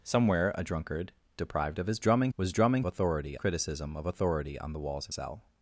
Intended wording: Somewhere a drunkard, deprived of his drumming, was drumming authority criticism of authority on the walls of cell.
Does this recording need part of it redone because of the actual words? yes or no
no